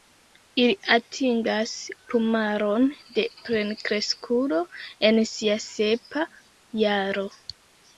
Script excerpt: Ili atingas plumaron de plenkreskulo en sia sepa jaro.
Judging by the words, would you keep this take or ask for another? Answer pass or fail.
pass